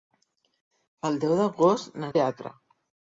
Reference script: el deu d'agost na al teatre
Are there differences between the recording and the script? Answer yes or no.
no